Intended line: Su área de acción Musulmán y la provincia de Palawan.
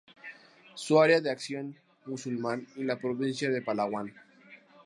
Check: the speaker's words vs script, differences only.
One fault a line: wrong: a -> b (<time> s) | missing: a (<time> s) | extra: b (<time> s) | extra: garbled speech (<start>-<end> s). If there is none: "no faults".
no faults